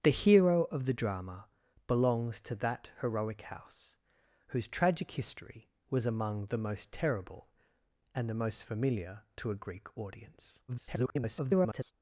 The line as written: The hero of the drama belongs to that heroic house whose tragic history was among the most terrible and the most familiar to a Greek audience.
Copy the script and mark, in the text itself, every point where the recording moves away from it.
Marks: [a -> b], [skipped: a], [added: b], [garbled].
The hero of the drama belongs to that heroic house whose tragic history was among the most terrible and the most familiar to a Greek audience. [garbled]